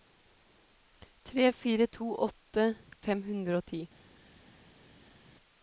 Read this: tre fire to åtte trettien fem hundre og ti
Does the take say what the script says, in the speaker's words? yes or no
no